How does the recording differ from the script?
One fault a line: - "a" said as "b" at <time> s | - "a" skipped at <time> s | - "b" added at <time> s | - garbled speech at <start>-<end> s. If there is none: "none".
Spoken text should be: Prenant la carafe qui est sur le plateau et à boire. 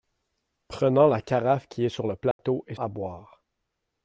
none